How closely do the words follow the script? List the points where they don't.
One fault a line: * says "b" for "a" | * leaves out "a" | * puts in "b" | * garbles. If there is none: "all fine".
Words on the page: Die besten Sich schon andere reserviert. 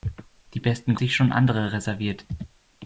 all fine